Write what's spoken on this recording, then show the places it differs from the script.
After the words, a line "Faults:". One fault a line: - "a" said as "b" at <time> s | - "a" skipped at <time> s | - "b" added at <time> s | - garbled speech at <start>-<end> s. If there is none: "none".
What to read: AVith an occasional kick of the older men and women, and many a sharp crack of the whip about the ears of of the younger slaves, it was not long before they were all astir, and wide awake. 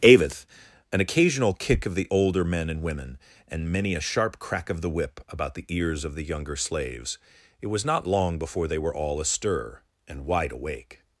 AVith an occasional kick of the older men and women, and many a sharp crack of the whip about the ears of the younger slaves, it was not long before they were all astir, and wide awake.
Faults:
- "of" skipped at 6.2 s